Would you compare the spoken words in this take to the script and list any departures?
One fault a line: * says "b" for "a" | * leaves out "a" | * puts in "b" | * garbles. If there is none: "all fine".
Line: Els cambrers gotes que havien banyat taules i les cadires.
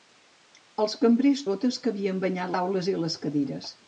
all fine